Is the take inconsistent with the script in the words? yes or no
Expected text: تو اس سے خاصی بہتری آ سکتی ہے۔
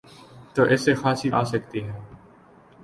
yes